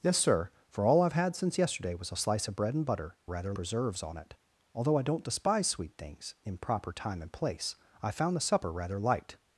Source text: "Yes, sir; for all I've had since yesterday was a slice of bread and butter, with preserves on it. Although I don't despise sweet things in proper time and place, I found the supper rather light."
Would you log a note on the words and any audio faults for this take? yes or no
yes